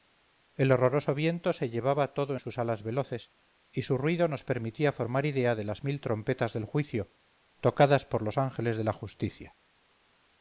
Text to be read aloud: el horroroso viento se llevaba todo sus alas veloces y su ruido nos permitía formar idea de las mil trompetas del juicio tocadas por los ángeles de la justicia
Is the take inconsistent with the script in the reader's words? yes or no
no